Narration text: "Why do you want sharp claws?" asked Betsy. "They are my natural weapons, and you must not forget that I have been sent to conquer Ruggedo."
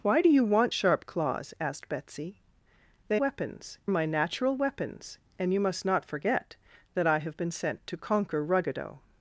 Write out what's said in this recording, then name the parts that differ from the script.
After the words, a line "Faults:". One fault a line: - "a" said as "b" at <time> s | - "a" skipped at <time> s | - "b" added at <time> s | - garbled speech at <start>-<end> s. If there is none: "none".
"Why do you want sharp claws?" asked Betsy. "They weapons my natural weapons, and you must not forget that I have been sent to conquer Ruggedo."
Faults:
- "are" said as "weapons" at 3.2 s